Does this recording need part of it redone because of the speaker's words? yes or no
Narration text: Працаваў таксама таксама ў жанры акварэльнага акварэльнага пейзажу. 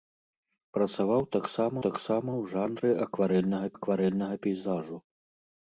no